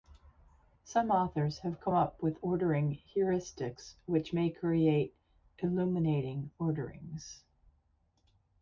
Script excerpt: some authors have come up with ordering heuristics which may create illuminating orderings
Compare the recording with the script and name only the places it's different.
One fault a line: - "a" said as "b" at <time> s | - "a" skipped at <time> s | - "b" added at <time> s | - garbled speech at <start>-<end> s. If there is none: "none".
none